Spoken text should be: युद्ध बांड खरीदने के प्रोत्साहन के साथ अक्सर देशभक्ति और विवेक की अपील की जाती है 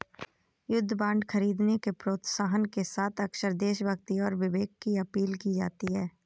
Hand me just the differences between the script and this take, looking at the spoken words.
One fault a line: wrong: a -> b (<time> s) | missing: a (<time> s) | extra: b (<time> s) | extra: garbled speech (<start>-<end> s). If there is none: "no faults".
no faults